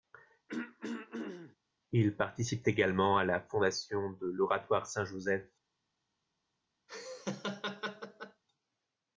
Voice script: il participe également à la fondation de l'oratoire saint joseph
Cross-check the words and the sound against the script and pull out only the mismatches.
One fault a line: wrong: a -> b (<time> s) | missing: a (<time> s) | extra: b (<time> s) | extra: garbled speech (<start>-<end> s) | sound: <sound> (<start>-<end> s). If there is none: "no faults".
sound: throat clearing (0.5-1.6 s)
sound: laugh (6.9-8.4 s)